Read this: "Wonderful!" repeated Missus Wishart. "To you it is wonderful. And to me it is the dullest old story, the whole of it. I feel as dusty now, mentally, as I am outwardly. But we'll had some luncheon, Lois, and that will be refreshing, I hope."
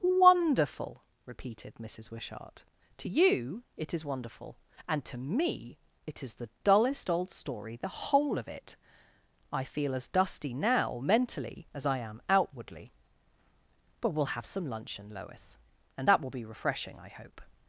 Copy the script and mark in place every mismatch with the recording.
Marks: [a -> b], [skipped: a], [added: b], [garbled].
"Wonderful!" repeated Missus Wishart. "To you it is wonderful. And to me it is the dullest old story, the whole of it. I feel as dusty now, mentally, as I am outwardly. But we'll [had -> have] some luncheon, Lois, and that will be refreshing, I hope."